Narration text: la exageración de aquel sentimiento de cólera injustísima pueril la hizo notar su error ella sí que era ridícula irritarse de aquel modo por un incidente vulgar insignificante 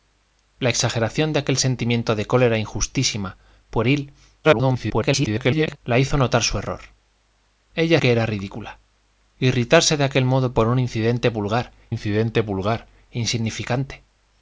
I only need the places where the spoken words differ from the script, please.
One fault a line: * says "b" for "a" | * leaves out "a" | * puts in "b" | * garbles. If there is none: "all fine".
* garbles
* leaves out "sí"
* puts in "incidente vulgar"